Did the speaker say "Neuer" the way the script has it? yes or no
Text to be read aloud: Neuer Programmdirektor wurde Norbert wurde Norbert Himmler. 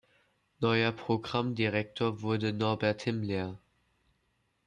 yes